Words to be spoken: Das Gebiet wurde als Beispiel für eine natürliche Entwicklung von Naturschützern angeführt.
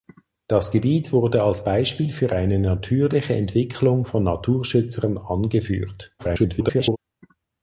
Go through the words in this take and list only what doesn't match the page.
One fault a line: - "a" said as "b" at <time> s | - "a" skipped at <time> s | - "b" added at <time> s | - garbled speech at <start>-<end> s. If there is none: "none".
- garbled speech at 6.2-7.0 s